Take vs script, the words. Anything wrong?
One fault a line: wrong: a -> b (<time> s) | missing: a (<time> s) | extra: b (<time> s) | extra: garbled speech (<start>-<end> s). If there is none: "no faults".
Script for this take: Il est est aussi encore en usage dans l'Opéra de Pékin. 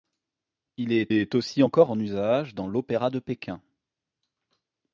no faults